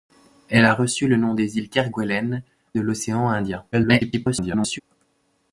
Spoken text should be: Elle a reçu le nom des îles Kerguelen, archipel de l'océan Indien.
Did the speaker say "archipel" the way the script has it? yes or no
no